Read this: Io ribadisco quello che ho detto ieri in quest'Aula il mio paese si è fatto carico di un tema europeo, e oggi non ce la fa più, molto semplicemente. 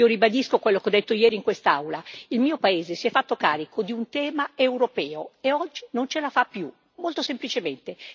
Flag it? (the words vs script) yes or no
no